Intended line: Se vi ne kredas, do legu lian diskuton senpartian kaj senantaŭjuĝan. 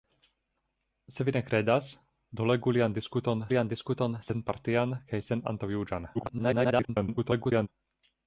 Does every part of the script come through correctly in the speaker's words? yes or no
no